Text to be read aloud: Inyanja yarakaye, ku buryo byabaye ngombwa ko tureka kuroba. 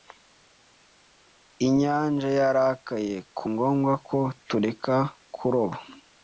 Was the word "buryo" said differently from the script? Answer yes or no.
yes